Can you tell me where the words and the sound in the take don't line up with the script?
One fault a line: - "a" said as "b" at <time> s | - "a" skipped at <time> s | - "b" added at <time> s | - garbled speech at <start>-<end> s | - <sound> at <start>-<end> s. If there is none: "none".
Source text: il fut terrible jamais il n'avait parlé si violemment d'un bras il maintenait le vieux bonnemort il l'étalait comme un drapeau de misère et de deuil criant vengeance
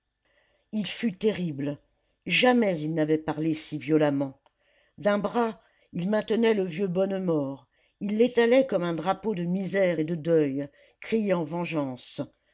none